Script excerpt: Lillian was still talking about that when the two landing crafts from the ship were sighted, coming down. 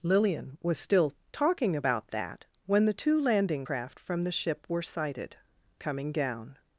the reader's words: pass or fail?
fail